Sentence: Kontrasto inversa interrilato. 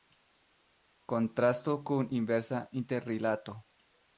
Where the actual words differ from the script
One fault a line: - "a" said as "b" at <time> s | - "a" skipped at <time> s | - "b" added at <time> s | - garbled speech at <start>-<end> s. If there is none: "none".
- "kun" added at 1.9 s